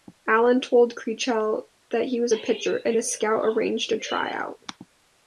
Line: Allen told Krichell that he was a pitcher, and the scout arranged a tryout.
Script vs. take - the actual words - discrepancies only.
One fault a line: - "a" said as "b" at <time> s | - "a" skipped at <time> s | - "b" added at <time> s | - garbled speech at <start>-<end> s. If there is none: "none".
none